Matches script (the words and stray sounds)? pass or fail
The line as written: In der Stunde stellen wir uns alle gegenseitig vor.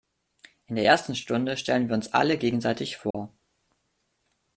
fail